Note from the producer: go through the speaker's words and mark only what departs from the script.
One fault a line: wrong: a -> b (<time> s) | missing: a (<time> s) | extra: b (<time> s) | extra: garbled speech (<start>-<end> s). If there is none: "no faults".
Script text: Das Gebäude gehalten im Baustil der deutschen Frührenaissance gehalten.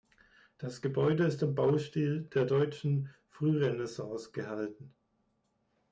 wrong: gehalten -> ist (1.2 s)